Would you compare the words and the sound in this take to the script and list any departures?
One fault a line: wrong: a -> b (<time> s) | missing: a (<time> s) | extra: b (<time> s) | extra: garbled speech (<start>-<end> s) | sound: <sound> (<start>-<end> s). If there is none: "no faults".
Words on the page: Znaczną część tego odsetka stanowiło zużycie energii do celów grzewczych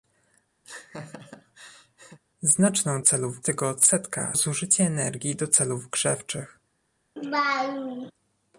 sound: laugh (0.6-2.2 s)
wrong: część -> celów (3.0 s)
missing: stanowiło (4.4 s)
sound: laugh (7.2-8.1 s)